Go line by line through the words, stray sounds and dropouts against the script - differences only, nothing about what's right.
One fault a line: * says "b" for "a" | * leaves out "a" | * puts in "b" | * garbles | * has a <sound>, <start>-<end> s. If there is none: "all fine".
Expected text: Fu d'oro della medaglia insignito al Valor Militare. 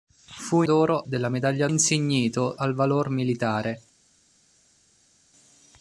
all fine